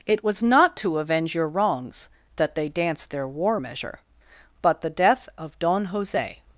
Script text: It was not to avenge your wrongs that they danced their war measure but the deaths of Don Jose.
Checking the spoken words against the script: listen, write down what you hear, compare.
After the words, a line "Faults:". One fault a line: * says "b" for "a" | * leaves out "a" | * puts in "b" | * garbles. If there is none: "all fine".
It was not to avenge your wrongs that they danced their war measure but the death of Don Jose.
Faults:
* says "death" for "deaths"